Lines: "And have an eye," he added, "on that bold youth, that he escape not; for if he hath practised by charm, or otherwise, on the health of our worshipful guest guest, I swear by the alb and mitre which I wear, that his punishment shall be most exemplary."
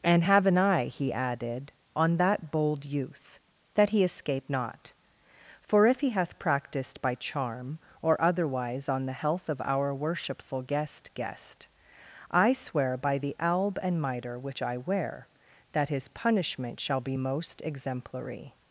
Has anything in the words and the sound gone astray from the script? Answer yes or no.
no